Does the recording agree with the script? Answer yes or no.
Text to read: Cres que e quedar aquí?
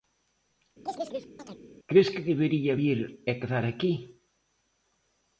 no